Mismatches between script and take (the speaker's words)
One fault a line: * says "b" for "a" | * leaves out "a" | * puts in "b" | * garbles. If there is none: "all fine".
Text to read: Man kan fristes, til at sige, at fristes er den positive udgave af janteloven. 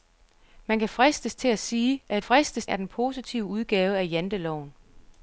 all fine